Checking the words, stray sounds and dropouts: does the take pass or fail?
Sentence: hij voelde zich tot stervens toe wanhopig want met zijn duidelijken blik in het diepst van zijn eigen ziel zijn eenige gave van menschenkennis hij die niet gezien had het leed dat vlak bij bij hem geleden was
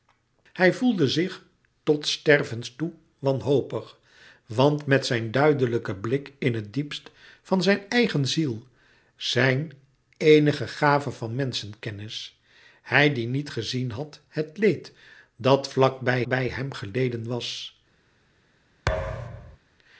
fail